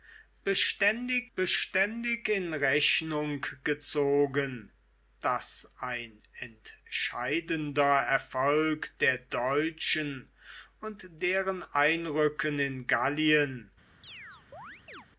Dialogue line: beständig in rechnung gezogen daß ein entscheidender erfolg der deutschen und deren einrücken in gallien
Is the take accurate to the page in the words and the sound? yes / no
no